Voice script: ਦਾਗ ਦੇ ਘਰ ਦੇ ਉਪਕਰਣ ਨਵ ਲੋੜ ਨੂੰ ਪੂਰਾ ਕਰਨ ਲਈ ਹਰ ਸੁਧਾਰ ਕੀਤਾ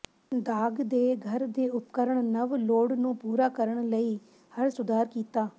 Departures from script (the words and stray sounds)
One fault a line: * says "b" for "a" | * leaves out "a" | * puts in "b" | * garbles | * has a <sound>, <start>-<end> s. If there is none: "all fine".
all fine